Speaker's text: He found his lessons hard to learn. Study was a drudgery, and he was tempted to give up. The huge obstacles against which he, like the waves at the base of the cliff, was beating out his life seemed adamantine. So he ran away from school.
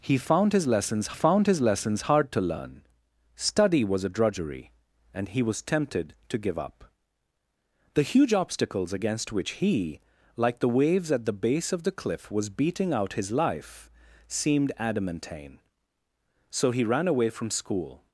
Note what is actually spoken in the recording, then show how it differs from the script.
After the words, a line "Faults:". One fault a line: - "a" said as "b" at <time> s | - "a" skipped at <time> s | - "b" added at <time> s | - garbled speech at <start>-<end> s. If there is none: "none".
He found his lessons found his lessons hard to learn. Study was a drudgery, and he was tempted to give up. The huge obstacles against which he, like the waves at the base of the cliff, was beating out his life seemed adamantine. So he ran away from school.
Faults:
- "found his lessons" added at 1.1 s